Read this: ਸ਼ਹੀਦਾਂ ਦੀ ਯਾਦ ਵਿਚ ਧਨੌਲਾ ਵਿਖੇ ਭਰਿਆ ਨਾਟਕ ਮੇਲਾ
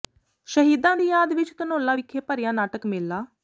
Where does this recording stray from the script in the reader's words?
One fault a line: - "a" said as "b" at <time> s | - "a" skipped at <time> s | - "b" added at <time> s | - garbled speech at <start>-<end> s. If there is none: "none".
none